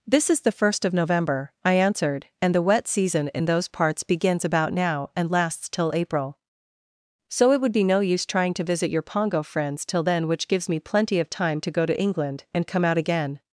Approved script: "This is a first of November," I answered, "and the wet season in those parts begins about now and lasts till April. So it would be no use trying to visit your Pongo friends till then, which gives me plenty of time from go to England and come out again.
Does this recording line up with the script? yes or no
no